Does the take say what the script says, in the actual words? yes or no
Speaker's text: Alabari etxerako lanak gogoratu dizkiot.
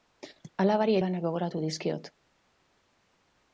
no